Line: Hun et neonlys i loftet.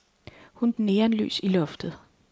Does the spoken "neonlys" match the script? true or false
true